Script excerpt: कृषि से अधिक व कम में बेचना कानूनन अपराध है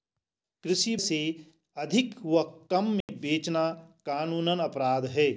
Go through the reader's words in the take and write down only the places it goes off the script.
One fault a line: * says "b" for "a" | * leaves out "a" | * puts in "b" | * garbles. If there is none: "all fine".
all fine